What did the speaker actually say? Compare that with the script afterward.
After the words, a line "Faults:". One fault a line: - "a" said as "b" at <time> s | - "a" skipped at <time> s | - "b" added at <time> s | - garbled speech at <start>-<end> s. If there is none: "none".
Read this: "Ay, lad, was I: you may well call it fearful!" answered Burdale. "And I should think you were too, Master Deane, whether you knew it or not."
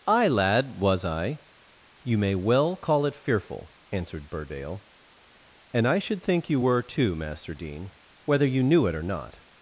"Ay, lad, was I: you may well call it fearful!" answered Burdale. "And I should think you were too, Master Deane, whether you knew it or not."
Faults:
none